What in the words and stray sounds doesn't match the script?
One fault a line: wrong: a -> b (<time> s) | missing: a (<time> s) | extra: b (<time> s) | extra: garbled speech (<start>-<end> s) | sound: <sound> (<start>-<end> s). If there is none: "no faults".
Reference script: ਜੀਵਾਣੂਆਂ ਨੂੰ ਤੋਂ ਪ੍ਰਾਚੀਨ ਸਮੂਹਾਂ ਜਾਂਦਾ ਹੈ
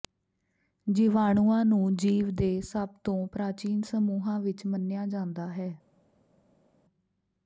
extra: ਜੀਵ ਦੇ ਸਭ (1.9 s)
extra: ਵਿਚ ਮੰਨਿਆ (4.4 s)